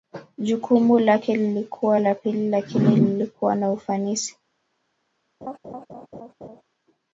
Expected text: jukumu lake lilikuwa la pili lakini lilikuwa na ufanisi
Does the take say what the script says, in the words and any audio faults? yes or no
no